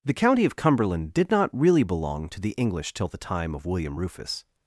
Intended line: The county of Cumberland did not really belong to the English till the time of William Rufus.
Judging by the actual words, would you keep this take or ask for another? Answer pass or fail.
pass